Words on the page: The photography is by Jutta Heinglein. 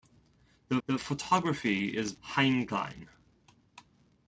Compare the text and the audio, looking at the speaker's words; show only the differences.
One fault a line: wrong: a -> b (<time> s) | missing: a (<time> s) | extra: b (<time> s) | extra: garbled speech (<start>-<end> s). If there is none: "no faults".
extra: the (0.9 s)
missing: by Jutta (2.1 s)